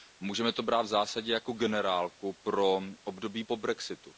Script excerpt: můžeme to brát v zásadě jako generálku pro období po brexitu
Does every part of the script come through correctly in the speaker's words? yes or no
yes